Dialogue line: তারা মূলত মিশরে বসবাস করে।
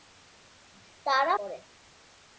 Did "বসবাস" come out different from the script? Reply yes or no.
yes